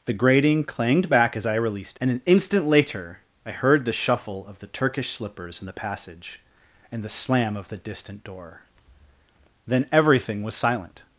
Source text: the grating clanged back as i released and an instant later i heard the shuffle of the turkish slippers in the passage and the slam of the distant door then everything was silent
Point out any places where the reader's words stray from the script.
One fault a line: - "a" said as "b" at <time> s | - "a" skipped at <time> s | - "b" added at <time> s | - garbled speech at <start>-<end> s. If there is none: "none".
none